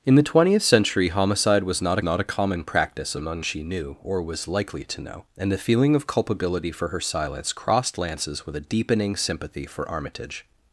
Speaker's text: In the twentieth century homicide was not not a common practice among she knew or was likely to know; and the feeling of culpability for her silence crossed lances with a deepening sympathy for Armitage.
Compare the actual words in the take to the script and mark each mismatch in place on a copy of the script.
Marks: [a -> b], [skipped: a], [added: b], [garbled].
In the twentieth century homicide was not not a common practice among she knew or was likely to know; and the feeling of culpability for her silence crossed lances with a deepening sympathy for Armitage.